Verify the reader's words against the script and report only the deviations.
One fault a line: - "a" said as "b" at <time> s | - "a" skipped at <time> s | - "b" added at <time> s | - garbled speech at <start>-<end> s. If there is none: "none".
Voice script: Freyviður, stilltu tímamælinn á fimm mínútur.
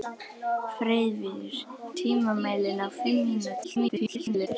- "stilltu" skipped at 1.6 s
- garbled speech at 3.6-4.5 s